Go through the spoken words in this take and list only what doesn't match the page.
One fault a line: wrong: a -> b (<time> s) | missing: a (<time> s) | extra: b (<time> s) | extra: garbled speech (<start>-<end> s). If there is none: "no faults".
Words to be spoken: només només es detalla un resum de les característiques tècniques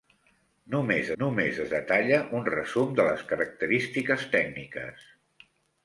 no faults